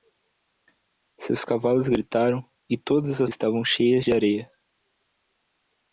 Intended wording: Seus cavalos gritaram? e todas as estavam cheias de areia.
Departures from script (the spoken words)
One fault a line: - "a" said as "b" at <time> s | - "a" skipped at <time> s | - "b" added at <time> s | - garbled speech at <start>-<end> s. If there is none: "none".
none